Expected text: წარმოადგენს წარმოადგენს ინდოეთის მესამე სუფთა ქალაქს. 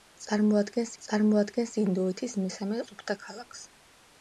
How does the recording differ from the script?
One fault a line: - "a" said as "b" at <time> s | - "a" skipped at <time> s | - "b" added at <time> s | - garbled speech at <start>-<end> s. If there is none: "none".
none